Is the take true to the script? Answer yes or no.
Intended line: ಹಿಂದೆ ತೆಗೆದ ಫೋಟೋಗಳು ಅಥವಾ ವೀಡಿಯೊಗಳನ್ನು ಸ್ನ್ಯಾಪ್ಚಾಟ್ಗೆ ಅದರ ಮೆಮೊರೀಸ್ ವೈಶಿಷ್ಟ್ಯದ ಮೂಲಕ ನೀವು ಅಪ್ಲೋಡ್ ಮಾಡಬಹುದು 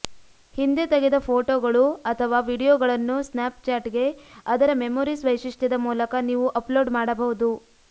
yes